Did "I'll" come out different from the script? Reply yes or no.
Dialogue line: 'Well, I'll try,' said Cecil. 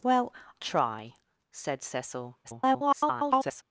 yes